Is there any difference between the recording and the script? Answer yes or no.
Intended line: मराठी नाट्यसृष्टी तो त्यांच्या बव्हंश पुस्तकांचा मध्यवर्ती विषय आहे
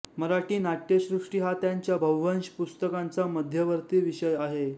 yes